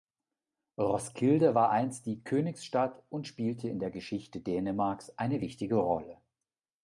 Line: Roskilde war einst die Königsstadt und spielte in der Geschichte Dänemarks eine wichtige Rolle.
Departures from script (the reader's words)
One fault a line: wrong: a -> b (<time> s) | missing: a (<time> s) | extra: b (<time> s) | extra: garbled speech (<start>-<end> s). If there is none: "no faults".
no faults